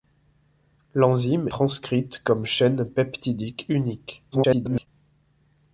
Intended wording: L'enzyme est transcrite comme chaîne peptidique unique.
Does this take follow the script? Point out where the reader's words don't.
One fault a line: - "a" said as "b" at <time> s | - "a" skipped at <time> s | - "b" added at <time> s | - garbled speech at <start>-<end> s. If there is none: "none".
- "est" skipped at 1.5 s
- garbled speech at 4.3-4.9 s